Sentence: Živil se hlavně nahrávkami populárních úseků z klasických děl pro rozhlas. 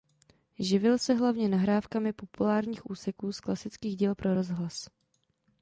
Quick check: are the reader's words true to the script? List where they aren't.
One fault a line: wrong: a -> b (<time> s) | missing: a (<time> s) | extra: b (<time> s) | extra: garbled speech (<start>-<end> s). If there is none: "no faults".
no faults